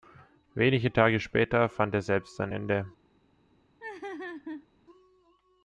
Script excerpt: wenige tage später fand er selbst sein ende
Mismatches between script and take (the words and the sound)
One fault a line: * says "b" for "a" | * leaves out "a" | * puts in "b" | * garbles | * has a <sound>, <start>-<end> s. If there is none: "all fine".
* has a laugh, 3.8-4.7 s